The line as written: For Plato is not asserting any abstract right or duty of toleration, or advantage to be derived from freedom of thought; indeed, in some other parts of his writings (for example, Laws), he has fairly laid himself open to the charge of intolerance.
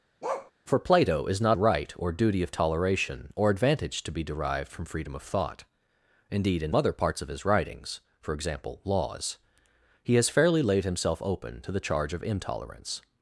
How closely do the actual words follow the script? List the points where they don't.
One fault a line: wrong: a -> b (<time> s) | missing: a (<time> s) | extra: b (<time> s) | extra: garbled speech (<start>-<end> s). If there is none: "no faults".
missing: asserting any abstract (1.6 s)
missing: some (6.7 s)